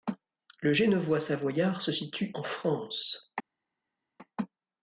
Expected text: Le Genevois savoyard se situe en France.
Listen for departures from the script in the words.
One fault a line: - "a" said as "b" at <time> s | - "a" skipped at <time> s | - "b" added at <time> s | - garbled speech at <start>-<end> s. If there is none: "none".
none